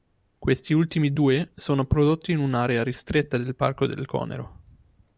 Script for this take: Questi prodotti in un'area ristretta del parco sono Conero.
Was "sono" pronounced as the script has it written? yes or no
no